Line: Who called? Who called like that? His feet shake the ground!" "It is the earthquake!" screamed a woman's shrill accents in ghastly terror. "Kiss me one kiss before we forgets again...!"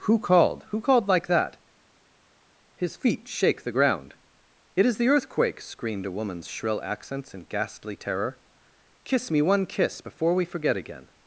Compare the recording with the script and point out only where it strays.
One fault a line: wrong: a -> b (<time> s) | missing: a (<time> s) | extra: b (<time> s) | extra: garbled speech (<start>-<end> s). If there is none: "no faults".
wrong: forgets -> forget (10.5 s)